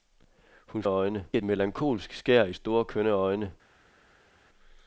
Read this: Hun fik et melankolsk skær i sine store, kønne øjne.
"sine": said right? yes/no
no